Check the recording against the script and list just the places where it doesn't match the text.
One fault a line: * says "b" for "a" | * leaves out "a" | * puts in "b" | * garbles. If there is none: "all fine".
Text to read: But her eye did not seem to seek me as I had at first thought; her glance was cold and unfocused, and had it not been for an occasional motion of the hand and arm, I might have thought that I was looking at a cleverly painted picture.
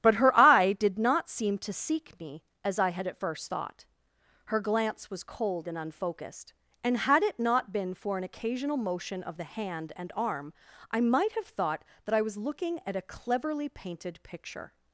all fine